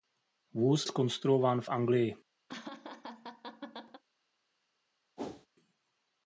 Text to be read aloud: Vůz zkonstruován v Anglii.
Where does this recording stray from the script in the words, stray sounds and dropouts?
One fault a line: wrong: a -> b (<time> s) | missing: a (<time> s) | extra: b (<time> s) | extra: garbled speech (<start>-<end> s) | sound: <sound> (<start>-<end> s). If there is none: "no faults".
sound: laugh (2.5-4.0 s)
sound: whoosh (5.2-5.5 s)